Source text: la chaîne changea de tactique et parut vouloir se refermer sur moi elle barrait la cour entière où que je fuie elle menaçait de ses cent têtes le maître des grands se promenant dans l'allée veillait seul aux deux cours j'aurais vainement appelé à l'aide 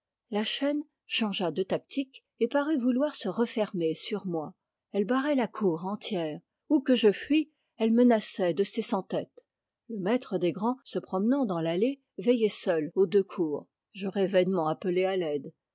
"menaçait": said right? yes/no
yes